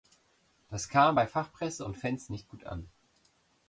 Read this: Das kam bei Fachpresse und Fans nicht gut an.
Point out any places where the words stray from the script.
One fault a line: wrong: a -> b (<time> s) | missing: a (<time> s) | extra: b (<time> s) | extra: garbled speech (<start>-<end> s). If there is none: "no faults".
no faults